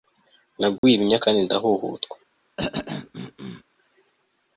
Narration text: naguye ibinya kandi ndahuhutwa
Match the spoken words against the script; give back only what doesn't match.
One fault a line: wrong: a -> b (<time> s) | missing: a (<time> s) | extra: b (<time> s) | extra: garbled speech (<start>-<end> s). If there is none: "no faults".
no faults